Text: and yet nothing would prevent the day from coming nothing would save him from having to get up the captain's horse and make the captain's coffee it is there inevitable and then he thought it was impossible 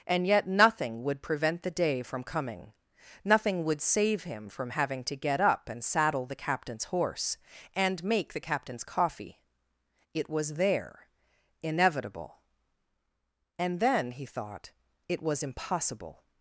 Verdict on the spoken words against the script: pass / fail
fail